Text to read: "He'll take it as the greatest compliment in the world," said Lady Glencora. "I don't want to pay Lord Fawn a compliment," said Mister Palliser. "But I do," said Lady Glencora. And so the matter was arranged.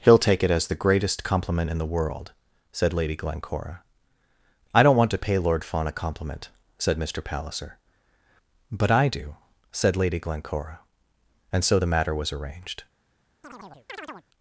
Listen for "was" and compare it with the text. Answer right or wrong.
right